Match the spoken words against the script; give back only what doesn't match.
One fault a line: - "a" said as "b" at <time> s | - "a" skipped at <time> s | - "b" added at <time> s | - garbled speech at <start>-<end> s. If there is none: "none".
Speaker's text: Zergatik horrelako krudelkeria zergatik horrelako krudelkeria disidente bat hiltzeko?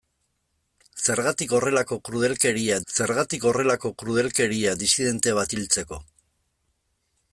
none